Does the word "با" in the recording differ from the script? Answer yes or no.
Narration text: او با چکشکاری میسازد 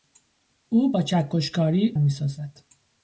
no